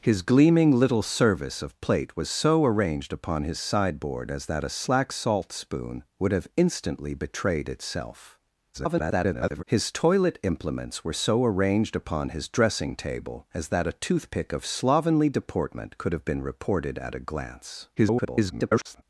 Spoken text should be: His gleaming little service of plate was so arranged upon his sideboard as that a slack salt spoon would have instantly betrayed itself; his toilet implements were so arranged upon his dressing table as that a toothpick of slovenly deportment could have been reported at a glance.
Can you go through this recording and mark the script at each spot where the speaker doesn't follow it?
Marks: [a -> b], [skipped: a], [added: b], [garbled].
His gleaming little service of plate was so arranged upon his sideboard as that a slack salt spoon would have instantly betrayed itself; [garbled] his toilet implements were so arranged upon his dressing table as that a toothpick of slovenly deportment could have been reported at a glance. [garbled]